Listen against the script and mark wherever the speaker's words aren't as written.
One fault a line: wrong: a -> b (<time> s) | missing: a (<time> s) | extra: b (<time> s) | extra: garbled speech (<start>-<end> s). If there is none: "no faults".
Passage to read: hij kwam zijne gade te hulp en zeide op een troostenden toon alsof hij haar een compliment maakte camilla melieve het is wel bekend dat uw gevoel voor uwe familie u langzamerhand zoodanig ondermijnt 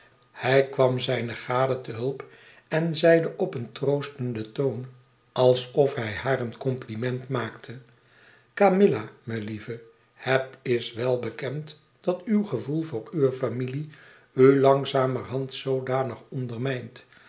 no faults